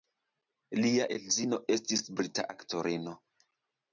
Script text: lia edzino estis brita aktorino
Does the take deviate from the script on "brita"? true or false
false